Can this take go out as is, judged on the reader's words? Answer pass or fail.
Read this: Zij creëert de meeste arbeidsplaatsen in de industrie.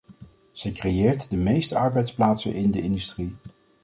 pass